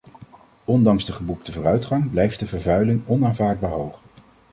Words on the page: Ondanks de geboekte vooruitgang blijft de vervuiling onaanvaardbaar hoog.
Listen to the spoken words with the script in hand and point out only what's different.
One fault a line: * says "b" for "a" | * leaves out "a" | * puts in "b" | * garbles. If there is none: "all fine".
all fine